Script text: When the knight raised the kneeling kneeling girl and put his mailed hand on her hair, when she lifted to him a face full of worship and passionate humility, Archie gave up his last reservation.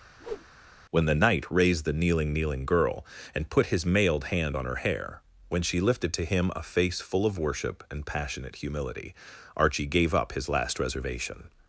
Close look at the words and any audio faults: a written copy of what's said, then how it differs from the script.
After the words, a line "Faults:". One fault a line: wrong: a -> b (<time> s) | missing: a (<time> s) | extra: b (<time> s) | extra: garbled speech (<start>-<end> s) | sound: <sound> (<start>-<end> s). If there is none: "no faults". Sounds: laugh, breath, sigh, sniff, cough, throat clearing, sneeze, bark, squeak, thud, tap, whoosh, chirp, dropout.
When the knight raised the kneeling kneeling girl and put his mailed hand on her hair, when she lifted to him a face full of worship and passionate humility, Archie gave up his last reservation.
Faults:
sound: whoosh (0.2-0.5 s)